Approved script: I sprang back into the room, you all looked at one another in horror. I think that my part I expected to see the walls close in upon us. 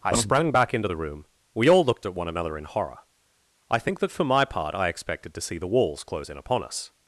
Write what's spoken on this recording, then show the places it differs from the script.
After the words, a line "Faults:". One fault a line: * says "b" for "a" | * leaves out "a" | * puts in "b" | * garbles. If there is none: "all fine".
I sprang back into the room, we all looked at one another in horror. I think that for my part I expected to see the walls close in upon us.
Faults:
* says "we" for "you"
* puts in "for"